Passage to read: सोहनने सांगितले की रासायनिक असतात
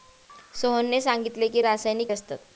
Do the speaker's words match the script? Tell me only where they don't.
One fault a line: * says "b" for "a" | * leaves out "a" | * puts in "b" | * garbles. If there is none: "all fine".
all fine